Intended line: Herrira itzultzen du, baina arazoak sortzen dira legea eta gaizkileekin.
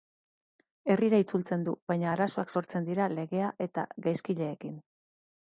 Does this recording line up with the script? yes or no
yes